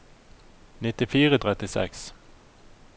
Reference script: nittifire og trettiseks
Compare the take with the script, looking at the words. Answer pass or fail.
pass